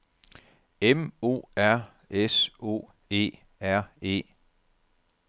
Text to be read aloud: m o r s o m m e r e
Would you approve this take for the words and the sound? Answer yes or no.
no